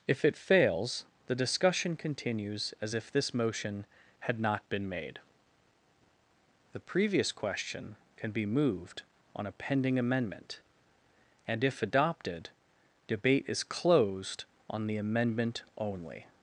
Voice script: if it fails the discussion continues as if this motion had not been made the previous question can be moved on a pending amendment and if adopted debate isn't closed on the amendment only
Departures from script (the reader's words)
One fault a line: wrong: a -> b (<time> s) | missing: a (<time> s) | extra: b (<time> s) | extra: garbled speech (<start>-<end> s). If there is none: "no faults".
wrong: isn't -> is (13.5 s)